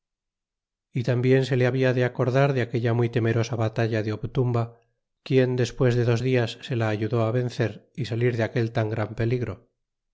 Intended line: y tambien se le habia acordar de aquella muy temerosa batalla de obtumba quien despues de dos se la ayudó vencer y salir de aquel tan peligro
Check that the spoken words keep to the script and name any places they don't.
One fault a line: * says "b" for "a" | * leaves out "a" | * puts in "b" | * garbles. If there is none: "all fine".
* puts in "de"
* puts in "dias"
* puts in "gran"